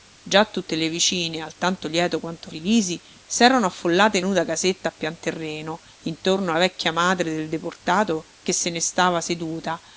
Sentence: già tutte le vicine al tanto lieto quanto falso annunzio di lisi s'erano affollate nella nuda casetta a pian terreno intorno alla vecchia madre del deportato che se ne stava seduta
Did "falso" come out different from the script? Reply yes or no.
yes